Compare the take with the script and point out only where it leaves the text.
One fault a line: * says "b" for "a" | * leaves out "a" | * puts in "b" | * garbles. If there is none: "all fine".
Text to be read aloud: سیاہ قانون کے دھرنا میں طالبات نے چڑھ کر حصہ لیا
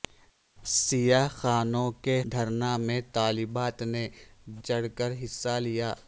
all fine